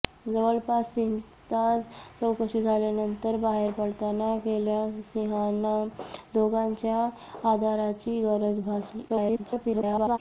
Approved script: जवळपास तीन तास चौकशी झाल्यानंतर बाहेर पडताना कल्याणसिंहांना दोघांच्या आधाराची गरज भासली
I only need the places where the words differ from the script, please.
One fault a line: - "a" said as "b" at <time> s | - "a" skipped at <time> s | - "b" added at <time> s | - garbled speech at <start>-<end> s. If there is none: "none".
- garbled speech at 9.1-10.2 s